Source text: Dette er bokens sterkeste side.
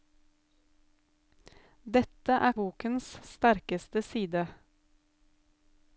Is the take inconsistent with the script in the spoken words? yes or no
no